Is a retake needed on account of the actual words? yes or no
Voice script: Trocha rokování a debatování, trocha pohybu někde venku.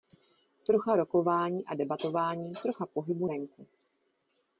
yes